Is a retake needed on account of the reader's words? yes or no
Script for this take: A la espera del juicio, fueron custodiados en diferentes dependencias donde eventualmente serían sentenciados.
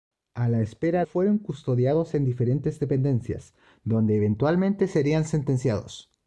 yes